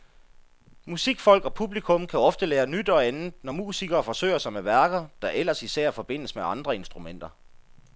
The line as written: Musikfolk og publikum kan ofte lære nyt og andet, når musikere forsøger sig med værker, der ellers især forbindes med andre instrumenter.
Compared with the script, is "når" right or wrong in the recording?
right